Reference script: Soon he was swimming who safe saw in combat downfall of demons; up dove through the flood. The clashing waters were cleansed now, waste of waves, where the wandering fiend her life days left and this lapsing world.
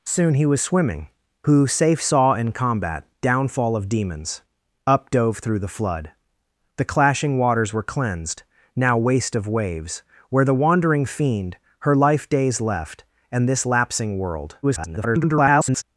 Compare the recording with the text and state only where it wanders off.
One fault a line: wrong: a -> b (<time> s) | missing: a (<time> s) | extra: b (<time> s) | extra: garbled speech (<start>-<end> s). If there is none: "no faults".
extra: garbled speech (14.6-15.8 s)